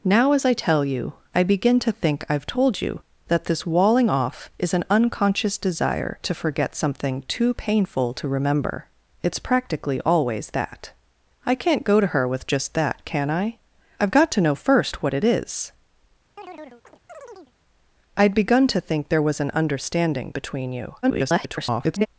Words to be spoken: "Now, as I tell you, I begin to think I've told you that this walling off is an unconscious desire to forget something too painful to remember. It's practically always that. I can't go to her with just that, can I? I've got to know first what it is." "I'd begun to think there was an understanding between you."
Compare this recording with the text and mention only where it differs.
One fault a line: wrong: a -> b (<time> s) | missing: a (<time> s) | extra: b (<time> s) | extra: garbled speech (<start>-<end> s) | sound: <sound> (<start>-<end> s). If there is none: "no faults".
sound: chirp (16.4-17.5 s)
extra: garbled speech (21.0-22.1 s)